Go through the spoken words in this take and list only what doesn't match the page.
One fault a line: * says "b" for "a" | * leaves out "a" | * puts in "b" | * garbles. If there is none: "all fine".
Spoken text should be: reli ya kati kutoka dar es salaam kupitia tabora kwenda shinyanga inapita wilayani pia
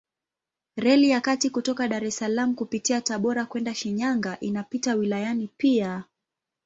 all fine